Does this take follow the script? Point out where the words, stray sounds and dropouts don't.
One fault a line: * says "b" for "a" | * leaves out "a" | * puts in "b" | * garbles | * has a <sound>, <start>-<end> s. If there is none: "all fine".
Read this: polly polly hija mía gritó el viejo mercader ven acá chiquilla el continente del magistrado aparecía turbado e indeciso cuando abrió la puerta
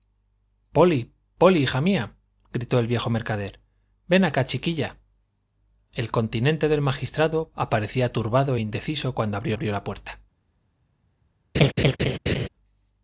* puts in "abrió"
* has a laugh, 11.5-12.5 s